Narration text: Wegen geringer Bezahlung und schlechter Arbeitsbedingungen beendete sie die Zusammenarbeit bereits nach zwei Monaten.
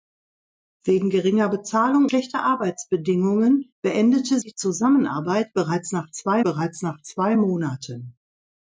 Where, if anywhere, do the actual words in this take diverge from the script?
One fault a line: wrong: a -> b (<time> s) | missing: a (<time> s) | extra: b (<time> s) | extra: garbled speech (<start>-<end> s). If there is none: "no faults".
missing: und (2.1 s)
missing: sie (4.4 s)
extra: bereits nach zwei (6.4 s)